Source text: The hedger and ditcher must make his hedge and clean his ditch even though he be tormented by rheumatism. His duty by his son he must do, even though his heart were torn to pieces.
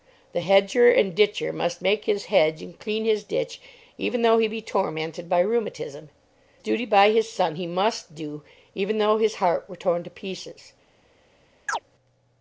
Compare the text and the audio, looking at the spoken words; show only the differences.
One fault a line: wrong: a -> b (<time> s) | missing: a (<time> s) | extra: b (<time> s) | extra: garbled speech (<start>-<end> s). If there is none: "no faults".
missing: His (6.1 s)